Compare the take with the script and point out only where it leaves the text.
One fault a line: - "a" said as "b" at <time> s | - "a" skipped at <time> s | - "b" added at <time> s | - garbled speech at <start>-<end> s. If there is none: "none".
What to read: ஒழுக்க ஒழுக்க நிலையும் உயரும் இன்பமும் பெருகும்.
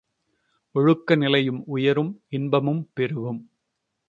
- "ஒழுக்க" skipped at 1.1 s